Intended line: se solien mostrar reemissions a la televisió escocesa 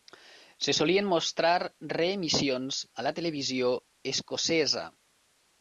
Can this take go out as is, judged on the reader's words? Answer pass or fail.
pass